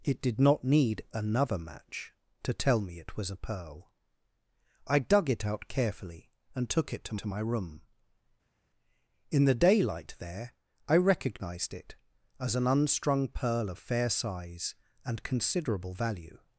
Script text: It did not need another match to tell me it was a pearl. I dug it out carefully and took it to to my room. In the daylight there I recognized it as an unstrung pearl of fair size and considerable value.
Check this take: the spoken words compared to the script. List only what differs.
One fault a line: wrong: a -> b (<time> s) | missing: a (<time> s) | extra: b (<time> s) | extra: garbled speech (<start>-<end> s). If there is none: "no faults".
no faults